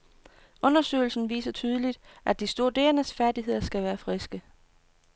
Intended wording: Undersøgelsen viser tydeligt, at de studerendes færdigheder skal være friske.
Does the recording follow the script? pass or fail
pass